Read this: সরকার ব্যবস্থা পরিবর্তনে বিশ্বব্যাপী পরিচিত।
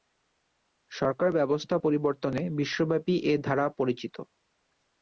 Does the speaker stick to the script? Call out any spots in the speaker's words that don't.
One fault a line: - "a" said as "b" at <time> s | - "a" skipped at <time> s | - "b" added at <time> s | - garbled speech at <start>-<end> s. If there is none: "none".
- "এ ধারা" added at 3.2 s